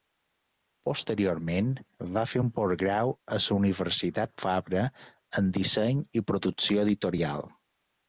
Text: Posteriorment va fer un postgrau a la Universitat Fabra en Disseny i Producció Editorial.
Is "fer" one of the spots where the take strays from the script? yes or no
no